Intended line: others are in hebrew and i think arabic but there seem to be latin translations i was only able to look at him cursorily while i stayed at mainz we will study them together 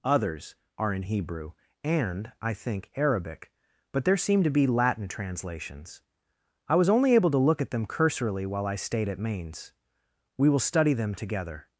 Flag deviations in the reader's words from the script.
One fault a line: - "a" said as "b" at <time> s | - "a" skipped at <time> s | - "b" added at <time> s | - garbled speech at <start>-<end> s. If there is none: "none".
- "him" said as "them" at 7.7 s